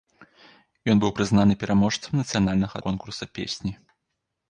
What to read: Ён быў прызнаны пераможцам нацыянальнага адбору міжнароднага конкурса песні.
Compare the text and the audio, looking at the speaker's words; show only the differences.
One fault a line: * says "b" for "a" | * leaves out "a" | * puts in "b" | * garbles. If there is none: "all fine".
* leaves out "адбору міжнароднага"